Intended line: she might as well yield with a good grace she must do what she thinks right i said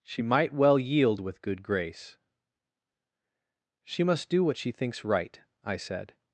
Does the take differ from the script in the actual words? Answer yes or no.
yes